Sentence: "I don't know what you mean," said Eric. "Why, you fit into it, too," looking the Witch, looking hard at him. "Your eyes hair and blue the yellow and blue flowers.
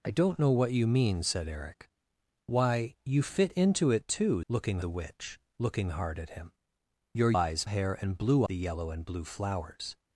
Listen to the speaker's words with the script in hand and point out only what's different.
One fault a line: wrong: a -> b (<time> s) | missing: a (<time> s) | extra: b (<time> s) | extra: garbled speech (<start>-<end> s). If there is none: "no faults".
no faults